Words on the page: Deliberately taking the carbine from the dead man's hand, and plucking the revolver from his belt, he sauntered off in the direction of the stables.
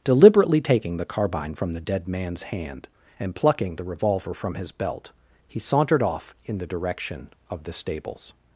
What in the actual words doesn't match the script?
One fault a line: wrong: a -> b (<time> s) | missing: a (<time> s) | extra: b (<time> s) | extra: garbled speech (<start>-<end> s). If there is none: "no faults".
no faults